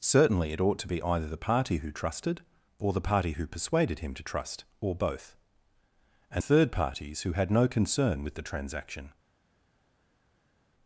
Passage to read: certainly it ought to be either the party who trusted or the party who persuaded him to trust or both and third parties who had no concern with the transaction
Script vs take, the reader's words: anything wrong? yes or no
no